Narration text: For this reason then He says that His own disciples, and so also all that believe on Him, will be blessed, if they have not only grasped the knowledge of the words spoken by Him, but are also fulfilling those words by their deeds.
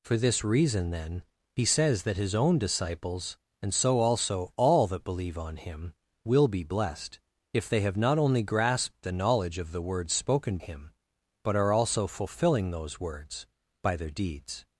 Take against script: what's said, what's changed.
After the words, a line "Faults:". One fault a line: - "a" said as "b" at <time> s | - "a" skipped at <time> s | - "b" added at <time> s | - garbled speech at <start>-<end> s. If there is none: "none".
For this reason then He says that His own disciples, and so also all that believe on Him, will be blessed, if they have not only grasped the knowledge of the words spoken Him, but are also fulfilling those words by their deeds.
Faults:
- "by" skipped at 10.6 s